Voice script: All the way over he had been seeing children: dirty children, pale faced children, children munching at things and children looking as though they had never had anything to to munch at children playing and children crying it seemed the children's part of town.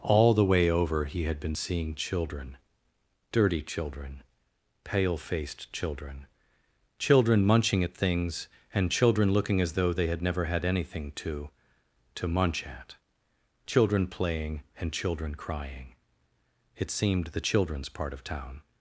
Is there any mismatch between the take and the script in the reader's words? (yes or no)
no